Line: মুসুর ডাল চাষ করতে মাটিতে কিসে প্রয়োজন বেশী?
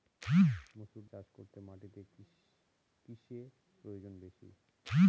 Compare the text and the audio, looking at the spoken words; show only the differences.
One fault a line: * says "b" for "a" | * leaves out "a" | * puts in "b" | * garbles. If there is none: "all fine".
* leaves out "ডাল"